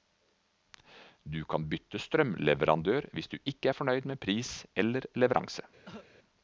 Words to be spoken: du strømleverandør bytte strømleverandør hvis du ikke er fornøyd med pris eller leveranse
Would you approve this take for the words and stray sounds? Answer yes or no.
no